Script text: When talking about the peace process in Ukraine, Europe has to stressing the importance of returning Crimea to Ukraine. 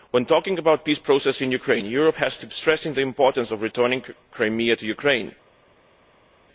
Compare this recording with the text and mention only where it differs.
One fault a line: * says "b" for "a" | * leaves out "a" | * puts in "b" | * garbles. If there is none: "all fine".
all fine